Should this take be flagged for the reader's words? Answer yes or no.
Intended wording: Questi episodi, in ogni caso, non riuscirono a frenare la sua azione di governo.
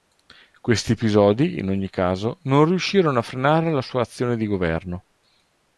no